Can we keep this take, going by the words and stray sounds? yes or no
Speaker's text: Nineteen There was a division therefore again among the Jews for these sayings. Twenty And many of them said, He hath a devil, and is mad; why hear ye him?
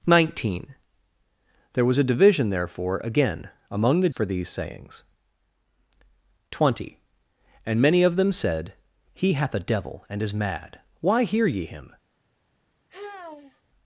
no